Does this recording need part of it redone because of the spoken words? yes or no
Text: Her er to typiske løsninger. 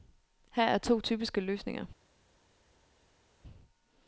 no